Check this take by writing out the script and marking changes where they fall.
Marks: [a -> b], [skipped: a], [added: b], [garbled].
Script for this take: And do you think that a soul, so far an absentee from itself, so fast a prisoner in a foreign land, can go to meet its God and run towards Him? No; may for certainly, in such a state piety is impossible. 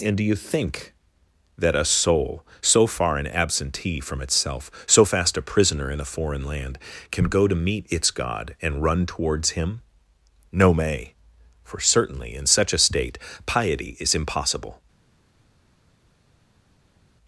And do you think that a soul, so far an absentee from itself, so fast a prisoner in a foreign land, can go to meet its God and run towards Him? No; may for certainly, in such a state piety is impossible.